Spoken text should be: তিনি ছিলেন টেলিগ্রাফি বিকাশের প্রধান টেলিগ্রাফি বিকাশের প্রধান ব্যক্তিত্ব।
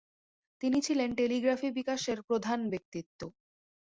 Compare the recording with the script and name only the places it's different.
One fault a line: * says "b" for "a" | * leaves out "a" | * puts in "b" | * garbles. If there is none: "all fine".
* leaves out "টেলিগ্রাফি বিকাশের প্রধান"